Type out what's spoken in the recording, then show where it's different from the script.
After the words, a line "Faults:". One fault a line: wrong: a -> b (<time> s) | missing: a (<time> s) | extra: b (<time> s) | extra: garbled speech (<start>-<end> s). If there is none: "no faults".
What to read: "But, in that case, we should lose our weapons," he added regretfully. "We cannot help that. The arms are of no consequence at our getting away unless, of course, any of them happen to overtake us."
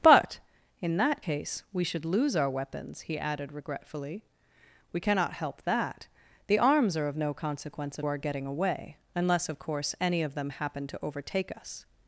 "But, in that case, we should lose our weapons," he added regretfully. "We cannot help that. The arms are of no consequence at our getting away unless, of course, any of them happen to overtake us."
Faults:
no faults